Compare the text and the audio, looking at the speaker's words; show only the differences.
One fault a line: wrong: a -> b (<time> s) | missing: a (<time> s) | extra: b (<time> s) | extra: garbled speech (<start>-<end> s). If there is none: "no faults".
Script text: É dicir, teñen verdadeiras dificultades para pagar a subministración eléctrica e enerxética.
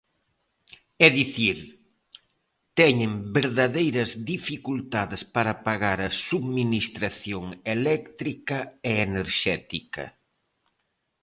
no faults